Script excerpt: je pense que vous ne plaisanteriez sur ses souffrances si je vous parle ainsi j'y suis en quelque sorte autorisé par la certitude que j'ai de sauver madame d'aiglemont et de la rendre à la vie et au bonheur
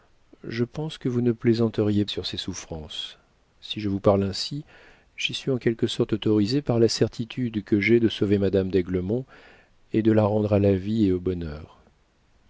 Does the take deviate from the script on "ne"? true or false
false